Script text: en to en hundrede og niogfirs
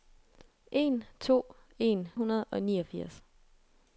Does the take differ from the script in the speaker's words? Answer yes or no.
no